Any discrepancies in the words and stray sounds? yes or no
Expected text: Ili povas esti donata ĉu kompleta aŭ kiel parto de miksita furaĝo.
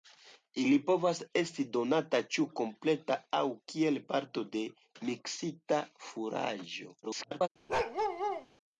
yes